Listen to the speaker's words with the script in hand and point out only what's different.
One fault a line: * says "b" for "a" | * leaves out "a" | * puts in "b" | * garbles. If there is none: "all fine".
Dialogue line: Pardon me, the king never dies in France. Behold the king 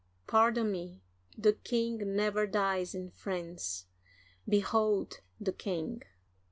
all fine